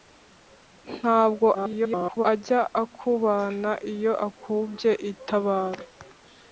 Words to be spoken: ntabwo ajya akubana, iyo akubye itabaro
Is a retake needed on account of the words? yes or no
yes